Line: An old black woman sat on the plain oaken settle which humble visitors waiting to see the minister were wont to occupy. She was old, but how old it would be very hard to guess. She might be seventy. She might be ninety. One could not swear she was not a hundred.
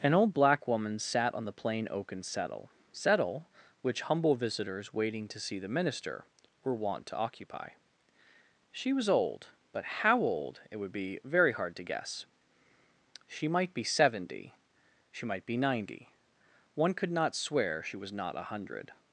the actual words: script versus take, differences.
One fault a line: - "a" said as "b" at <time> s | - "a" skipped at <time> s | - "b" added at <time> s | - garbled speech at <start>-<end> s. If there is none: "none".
- "settle" added at 2.9 s